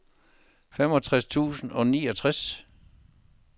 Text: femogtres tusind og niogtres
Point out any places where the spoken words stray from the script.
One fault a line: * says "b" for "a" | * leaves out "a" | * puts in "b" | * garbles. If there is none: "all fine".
all fine